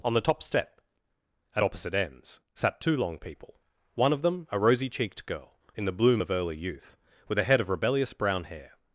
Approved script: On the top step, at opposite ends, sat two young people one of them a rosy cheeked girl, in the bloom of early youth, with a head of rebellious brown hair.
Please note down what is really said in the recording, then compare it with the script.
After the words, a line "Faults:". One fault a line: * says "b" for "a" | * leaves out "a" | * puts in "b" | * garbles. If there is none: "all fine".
On the top step, at opposite ends, sat two long people one of them a rosy cheeked girl, in the bloom of early youth, with a head of rebellious brown hair.
Faults:
* says "long" for "young"